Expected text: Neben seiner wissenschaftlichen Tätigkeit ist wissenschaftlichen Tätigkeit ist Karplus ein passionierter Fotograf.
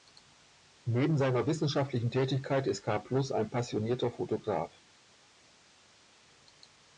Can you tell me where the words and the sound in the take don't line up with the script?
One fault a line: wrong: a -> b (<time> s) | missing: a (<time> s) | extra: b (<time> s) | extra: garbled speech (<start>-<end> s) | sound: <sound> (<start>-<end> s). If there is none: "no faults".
missing: wissenschaftlichen Tätigkeit ist (2.8 s)